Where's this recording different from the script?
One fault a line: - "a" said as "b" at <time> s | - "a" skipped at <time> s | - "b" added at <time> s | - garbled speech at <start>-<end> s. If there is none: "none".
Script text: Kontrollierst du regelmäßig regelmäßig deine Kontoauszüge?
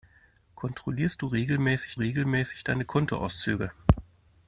none